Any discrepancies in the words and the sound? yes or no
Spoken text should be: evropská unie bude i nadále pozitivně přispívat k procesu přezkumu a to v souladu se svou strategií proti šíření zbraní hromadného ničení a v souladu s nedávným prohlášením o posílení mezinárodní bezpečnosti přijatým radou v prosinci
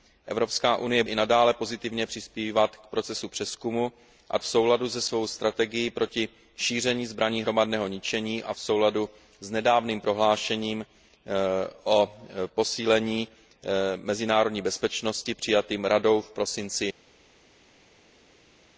yes